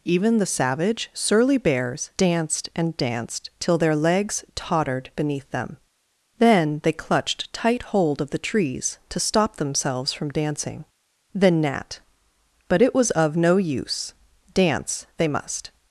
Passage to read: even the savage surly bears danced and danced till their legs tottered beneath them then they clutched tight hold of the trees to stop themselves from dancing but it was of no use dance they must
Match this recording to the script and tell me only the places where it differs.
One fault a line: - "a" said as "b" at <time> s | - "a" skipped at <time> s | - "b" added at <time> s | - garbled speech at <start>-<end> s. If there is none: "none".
- "then nat" added at 11.3 s